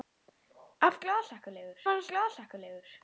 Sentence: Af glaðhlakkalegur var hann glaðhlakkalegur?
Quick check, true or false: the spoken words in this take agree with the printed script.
true